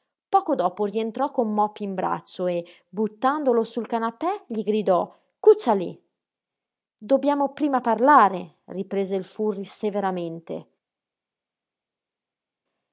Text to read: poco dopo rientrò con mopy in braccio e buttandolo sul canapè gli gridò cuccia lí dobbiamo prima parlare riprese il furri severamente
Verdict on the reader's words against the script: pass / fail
pass